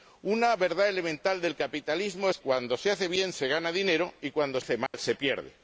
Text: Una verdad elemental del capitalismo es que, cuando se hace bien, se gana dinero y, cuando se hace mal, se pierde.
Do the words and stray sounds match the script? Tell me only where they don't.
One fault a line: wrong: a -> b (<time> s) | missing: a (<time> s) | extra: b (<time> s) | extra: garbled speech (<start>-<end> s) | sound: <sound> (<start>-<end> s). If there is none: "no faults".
missing: que (2.4 s)
missing: se (4.6 s)
sound: dropout (4.9-4.9 s)